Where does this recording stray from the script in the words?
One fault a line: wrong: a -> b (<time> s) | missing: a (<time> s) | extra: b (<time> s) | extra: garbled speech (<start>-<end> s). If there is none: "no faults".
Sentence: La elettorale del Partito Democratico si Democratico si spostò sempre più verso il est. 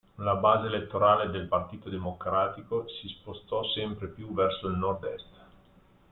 extra: base (0.3 s)
missing: Democratico si (3.1 s)
extra: nord (4.8 s)